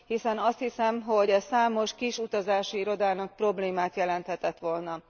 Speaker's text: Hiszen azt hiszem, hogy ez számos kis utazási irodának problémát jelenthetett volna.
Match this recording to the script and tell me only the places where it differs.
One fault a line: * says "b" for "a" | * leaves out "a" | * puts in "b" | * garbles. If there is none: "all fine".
all fine